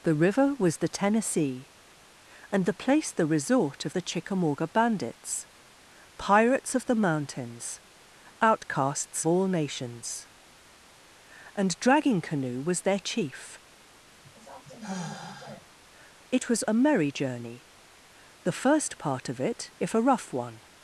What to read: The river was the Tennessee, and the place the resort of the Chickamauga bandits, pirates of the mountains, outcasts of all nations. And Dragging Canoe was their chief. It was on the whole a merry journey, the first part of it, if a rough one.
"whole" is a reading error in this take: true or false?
true